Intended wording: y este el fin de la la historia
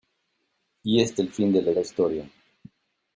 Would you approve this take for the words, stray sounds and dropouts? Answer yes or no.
yes